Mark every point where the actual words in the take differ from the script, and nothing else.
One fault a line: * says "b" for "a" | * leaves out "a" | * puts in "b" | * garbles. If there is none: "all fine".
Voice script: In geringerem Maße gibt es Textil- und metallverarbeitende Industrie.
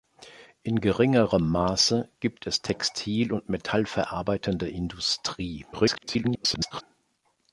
* garbles